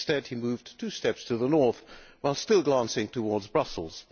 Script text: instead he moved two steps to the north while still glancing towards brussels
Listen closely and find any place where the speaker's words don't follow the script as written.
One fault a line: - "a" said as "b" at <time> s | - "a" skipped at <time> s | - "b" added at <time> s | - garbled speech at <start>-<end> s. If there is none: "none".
none